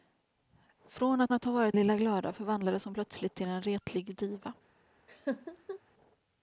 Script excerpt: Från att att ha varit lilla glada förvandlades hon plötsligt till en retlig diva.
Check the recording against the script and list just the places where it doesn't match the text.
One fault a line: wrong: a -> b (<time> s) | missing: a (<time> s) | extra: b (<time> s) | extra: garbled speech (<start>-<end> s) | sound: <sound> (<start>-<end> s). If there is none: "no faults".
sound: laugh (5.1-5.8 s)